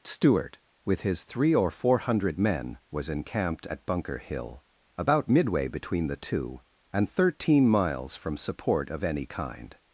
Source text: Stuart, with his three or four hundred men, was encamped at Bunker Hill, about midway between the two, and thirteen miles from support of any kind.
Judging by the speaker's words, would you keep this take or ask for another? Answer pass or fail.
pass